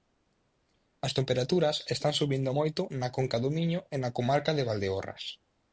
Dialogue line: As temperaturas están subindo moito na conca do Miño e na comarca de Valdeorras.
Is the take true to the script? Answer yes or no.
yes